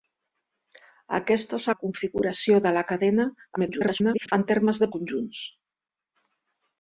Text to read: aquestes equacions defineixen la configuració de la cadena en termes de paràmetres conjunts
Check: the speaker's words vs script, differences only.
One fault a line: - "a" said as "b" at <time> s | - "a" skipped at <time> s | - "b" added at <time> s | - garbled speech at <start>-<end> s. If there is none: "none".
- "equacions defineixen" skipped at 1.7 s
- garbled speech at 3.6-4.3 s
- "paràmetres" skipped at 4.9 s